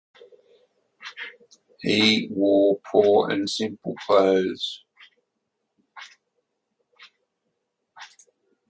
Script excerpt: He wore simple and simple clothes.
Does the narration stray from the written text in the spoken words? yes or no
yes